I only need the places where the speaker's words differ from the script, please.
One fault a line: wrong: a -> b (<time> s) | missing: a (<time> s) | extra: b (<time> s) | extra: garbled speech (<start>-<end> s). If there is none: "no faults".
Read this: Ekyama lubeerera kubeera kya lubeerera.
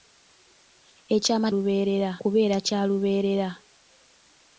no faults